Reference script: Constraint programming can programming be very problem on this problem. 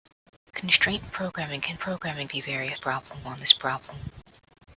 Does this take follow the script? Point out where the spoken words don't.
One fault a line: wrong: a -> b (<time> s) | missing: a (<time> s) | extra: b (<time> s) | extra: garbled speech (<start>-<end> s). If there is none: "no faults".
no faults